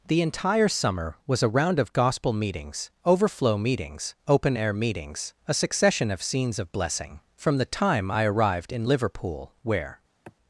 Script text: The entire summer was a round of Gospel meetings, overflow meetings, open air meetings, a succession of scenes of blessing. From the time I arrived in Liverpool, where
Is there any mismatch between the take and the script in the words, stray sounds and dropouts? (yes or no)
yes